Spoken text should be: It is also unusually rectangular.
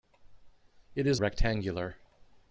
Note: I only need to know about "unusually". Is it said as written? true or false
false